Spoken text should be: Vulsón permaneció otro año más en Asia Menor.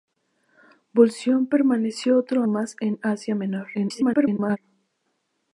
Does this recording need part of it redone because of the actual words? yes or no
yes